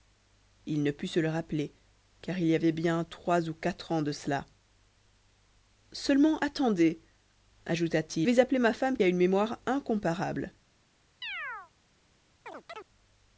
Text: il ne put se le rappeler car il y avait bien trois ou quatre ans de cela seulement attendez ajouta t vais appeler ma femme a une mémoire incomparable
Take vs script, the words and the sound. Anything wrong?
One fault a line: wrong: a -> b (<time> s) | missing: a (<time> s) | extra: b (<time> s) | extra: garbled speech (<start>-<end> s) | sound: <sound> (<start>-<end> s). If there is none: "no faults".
sound: chirp (11.2-11.7 s)
sound: chirp (12.5-12.9 s)